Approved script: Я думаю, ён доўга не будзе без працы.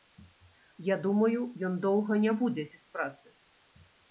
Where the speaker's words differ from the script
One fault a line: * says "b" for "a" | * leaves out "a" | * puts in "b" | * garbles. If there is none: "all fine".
all fine